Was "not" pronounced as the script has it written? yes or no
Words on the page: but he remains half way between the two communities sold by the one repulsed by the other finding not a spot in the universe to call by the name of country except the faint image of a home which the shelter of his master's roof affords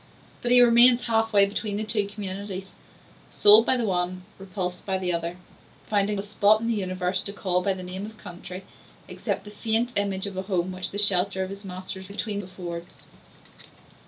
no